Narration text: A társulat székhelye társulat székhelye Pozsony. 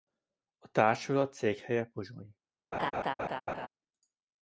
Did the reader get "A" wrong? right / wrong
right